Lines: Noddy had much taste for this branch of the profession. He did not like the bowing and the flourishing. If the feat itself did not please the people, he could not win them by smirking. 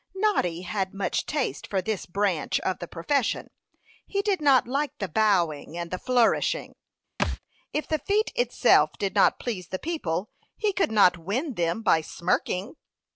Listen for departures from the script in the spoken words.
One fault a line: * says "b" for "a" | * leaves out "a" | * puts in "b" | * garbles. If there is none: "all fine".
all fine